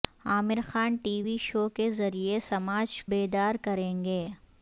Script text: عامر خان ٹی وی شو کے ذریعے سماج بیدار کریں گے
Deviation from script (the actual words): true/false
false